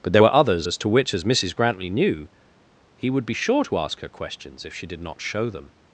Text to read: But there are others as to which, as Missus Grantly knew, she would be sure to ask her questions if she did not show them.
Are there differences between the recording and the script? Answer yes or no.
yes